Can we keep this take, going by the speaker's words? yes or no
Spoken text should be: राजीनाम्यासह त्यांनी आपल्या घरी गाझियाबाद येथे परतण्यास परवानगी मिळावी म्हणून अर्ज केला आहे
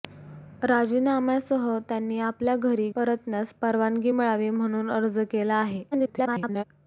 no